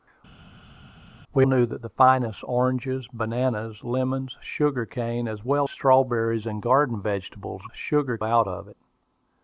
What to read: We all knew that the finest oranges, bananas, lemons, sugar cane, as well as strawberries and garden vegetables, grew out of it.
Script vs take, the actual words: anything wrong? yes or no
yes